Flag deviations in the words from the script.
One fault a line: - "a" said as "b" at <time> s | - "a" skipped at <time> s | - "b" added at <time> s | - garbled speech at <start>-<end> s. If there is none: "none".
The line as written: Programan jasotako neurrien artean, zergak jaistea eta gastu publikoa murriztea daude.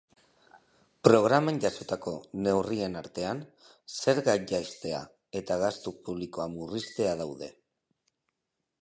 none